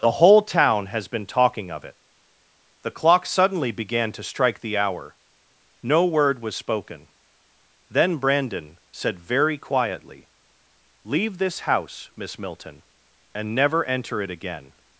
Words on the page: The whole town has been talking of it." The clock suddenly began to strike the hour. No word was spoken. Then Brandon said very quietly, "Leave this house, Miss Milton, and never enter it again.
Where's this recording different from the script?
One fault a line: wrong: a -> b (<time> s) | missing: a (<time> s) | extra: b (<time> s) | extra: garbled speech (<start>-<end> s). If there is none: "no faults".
no faults